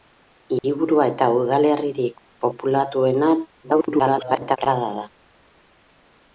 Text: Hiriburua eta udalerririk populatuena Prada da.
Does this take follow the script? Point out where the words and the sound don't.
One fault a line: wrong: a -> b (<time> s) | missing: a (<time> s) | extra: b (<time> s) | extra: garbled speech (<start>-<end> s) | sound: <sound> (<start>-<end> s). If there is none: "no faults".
sound: dropout (0.6-0.6 s)
extra: garbled speech (3.6-4.6 s)